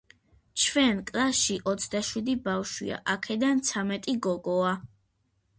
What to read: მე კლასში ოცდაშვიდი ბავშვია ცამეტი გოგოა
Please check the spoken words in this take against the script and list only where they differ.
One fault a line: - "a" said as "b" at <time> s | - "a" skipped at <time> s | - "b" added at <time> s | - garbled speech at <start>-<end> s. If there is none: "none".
- "მე" said as "ჩვენ" at 0.6 s
- "აქედან" added at 3.2 s